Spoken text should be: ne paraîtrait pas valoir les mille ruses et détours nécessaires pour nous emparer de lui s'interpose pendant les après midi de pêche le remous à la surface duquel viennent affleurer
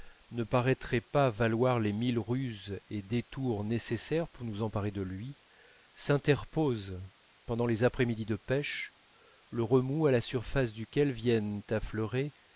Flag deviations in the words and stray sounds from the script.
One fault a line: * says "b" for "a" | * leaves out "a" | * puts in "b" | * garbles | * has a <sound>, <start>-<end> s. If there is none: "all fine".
all fine